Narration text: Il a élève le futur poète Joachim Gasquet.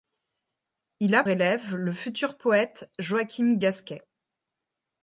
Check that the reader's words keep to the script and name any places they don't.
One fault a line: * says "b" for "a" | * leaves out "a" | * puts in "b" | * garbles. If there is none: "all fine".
all fine